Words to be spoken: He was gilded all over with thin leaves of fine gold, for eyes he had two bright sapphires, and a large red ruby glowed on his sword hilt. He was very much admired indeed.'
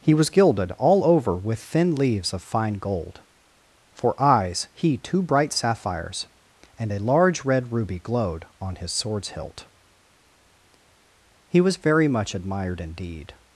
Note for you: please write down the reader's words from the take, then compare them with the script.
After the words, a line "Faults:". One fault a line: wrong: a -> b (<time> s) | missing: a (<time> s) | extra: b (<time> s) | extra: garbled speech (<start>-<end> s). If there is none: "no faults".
He was gilded all over with thin leaves of fine gold, for eyes he two bright sapphires, and a large red ruby glowed on his swords hilt. He was very much admired indeed.'
Faults:
missing: had (5.0 s)
wrong: sword -> swords (8.9 s)